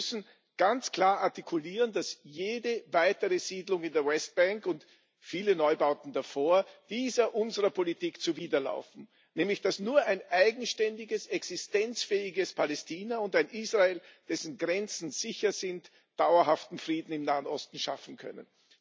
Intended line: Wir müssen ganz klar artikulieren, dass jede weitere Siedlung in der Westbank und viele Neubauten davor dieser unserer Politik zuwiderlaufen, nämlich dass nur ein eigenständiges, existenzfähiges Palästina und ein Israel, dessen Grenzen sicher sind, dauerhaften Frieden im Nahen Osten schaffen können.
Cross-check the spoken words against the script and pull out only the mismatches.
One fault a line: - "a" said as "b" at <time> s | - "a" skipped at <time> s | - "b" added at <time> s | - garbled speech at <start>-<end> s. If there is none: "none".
none